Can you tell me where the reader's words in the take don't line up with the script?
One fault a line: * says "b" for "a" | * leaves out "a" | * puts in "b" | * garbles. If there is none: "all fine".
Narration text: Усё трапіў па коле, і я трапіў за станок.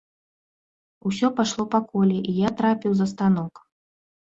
* says "пайшло" for "трапіў"